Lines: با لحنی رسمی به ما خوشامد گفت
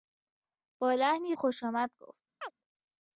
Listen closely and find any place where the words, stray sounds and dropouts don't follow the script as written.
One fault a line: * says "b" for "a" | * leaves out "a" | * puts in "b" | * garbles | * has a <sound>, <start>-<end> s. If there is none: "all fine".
* leaves out "رسمی به ما"
* has a chirp, 2.4-2.5 s